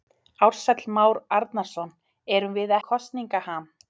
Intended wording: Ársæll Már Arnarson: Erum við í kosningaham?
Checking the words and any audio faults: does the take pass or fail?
pass